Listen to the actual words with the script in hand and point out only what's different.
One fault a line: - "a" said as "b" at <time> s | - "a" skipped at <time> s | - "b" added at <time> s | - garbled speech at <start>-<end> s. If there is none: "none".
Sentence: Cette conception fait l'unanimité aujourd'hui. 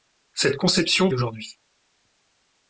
- "fait l'unanimité" skipped at 1.1 s